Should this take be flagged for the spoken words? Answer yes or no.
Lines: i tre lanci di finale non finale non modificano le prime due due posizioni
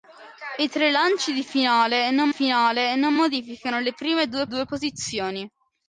no